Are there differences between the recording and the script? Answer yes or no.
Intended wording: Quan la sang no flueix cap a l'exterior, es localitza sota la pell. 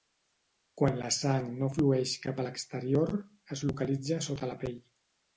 no